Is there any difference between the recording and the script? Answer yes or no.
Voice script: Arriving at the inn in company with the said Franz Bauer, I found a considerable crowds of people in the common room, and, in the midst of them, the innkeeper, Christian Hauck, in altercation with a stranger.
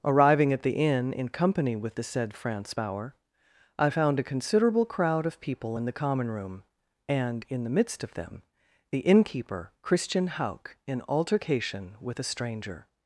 yes